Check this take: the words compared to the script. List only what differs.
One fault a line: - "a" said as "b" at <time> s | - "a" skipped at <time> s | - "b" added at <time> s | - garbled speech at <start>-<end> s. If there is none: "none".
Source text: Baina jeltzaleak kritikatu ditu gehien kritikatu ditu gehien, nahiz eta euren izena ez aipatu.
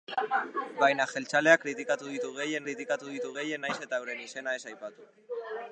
none